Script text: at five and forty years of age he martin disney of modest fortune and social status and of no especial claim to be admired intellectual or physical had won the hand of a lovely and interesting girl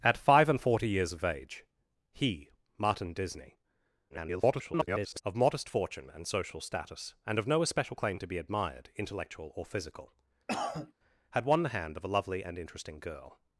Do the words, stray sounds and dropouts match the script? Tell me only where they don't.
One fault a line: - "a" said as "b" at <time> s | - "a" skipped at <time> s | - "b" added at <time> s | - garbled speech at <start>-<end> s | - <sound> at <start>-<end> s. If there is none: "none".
- garbled speech at 4.1-5.2 s
- cough at 10.5-10.9 s